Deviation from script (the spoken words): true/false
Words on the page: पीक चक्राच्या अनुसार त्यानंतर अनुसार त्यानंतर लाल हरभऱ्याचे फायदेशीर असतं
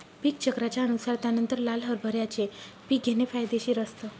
true